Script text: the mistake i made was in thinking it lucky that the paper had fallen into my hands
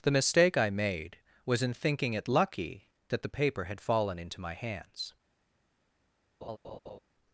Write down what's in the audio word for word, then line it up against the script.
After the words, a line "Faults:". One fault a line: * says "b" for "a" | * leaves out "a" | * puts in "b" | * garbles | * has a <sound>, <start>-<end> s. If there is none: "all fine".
the mistake i made was in thinking it lucky that the paper had fallen into my hands
Faults:
* has a laugh, 6.4-7.0 s